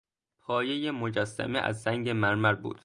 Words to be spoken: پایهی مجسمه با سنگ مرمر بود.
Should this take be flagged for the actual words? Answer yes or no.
yes